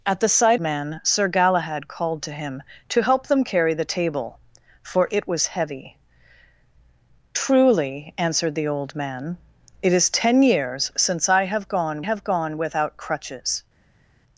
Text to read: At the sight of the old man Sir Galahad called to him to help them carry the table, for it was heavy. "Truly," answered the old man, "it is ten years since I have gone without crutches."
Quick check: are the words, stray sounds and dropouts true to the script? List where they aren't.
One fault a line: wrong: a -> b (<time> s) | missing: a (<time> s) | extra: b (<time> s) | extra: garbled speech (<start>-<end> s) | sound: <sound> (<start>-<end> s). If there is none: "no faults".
missing: of the old (0.6 s)
extra: have gone (12.0 s)